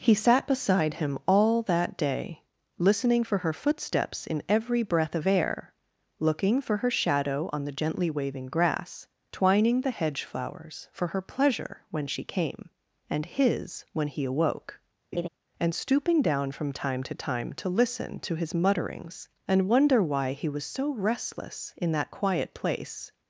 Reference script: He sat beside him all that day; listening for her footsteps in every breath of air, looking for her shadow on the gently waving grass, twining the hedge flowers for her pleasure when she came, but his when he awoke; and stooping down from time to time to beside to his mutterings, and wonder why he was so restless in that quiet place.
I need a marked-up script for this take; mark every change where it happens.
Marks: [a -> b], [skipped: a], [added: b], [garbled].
He sat beside him all that day; listening for her footsteps in every breath of air, looking for her shadow on the gently waving grass, twining the hedge flowers for her pleasure when she came, [but -> and] his when he awoke; and stooping down from time to time to [beside -> listen] to his mutterings, and wonder why he was so restless in that quiet place.